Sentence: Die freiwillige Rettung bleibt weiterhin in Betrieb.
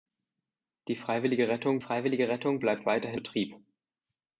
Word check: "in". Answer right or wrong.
wrong